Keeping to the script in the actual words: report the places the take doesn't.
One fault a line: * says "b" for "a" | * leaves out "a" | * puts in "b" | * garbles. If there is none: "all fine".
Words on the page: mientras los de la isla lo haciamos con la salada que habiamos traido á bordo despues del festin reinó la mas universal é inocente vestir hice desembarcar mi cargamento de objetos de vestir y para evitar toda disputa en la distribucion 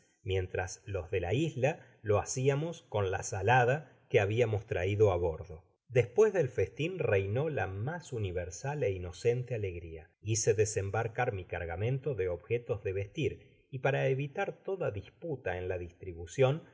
* says "alegria" for "vestir"